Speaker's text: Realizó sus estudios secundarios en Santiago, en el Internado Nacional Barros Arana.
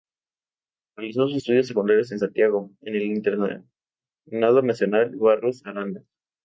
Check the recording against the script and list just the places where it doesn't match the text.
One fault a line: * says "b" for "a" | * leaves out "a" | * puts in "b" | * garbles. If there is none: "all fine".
all fine